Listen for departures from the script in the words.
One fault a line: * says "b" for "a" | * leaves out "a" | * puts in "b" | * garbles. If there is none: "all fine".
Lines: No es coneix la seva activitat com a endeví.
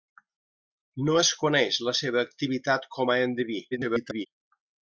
* garbles